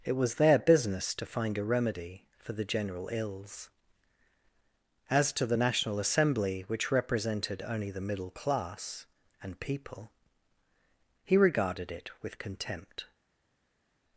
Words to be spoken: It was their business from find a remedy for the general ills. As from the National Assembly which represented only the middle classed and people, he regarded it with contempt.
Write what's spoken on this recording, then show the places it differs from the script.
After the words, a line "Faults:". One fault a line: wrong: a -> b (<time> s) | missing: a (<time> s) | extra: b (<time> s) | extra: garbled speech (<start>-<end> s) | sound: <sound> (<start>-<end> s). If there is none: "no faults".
It was their business to find a remedy for the general ills. As to the National Assembly which represented only the middle class and people, he regarded it with contempt.
Faults:
wrong: from -> to (1.1 s)
wrong: from -> to (5.3 s)
wrong: classed -> class (8.3 s)